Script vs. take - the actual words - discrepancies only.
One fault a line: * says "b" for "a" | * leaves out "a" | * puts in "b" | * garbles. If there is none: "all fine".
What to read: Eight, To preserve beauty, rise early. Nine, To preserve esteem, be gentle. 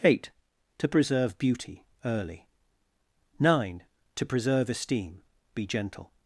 * leaves out "rise"